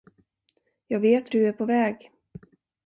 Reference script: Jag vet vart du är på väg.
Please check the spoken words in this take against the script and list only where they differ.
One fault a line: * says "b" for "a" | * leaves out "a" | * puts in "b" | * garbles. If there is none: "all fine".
* leaves out "vart"